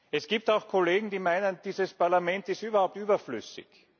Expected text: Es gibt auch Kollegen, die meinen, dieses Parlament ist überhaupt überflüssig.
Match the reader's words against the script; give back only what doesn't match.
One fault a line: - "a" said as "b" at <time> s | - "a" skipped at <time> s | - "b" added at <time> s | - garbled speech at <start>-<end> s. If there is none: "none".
none